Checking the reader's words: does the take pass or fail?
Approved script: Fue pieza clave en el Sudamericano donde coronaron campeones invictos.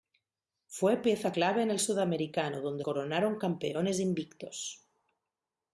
pass